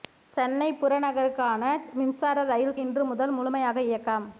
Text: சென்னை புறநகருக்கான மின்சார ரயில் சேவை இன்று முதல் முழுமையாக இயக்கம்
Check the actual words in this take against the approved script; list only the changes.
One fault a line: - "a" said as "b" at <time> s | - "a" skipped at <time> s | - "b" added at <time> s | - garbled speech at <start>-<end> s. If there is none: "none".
- "சேவை" skipped at 2.8 s